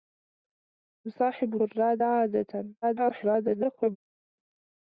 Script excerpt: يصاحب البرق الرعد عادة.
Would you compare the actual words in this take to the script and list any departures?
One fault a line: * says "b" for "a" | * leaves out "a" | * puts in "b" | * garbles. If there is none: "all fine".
* leaves out "البرق"
* garbles